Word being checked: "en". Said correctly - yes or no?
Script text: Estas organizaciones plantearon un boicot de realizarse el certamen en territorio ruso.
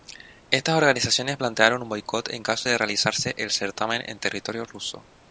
yes